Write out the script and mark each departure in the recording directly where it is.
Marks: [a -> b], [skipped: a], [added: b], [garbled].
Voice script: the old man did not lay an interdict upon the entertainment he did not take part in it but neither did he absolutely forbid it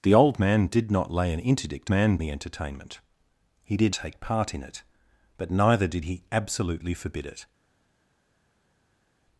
the old man did not lay an interdict [upon -> man] the entertainment he did [skipped: not] take part in it but neither did he absolutely forbid it